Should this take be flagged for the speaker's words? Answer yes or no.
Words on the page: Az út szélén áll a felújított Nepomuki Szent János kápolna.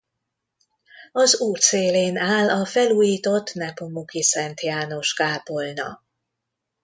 no